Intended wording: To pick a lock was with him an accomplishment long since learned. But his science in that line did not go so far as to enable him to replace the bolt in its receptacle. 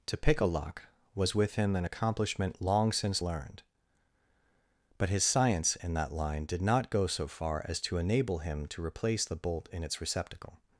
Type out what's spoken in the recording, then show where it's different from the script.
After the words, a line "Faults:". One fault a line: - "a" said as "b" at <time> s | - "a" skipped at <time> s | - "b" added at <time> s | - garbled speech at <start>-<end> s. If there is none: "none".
To pick a lock was with him an accomplishment long since learned. But his science in that line did not go so far as to enable him to replace the bolt in its receptacle.
Faults:
none